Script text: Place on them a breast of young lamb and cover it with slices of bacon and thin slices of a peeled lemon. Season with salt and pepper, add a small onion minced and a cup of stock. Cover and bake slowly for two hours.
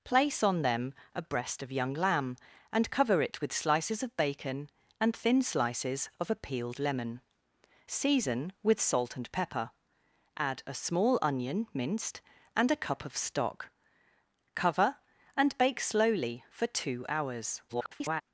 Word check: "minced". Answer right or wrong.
right